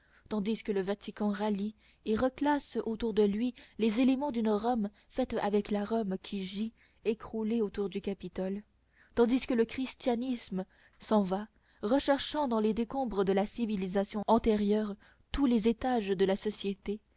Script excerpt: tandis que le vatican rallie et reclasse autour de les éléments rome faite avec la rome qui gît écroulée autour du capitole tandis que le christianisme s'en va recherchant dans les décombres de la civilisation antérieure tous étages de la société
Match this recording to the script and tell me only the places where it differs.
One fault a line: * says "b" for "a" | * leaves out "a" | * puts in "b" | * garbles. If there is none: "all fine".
* puts in "lui"
* puts in "d'une"
* puts in "les"